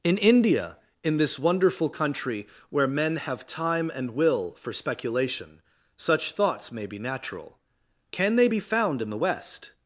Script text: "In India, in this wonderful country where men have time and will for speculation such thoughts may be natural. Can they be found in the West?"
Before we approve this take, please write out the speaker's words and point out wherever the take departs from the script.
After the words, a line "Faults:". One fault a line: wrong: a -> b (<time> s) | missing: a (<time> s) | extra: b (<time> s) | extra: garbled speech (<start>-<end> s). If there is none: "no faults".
"In India, in this wonderful country where men have time and will for speculation such thoughts may be natural. Can they be found in the West?"
Faults:
no faults